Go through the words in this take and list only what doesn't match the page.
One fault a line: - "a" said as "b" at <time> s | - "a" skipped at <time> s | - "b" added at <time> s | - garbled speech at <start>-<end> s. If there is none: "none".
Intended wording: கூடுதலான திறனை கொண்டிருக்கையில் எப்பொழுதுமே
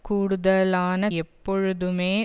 - "திறனை கொண்டிருக்கையில்" skipped at 1.1 s